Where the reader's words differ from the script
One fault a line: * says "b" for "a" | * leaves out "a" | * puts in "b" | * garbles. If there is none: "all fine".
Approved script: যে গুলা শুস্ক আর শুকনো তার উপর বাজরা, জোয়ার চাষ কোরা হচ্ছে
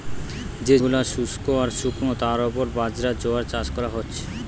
all fine